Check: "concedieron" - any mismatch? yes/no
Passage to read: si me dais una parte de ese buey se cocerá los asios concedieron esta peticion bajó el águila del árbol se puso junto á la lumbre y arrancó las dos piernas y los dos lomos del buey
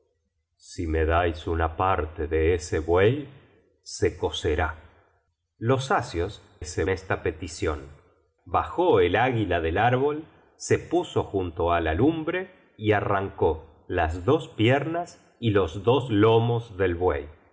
yes